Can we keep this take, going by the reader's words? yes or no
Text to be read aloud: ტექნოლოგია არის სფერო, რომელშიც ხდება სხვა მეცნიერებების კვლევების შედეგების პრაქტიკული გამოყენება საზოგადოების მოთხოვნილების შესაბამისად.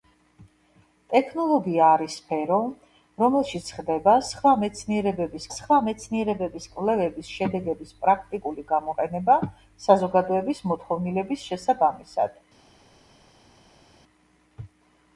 no